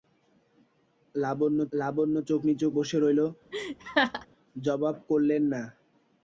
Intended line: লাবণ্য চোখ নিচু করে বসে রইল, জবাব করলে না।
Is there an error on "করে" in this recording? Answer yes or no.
yes